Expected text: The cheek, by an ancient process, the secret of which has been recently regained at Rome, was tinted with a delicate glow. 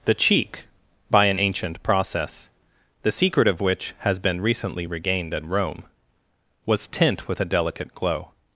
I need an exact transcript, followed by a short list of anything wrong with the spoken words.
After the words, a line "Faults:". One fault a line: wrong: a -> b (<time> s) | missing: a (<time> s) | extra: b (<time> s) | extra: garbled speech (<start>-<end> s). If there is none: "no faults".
The cheek, by an ancient process, the secret of which has been recently regained at Rome, was tint with a delicate glow.
Faults:
wrong: tinted -> tint (6.9 s)